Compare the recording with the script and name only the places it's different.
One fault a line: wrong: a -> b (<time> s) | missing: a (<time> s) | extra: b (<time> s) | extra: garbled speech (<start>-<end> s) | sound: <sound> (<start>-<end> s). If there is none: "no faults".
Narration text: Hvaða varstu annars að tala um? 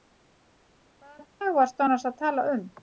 extra: dag (1.4 s)